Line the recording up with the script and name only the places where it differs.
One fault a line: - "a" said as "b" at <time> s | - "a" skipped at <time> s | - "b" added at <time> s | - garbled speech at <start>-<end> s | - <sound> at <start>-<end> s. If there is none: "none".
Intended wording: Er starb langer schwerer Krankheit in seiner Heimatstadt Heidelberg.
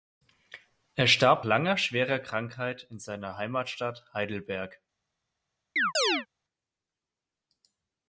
- chirp at 5.8-6.3 s